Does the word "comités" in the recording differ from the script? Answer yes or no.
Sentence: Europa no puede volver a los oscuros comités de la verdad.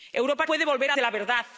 yes